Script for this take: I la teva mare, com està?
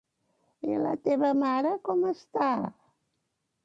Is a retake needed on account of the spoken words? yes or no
no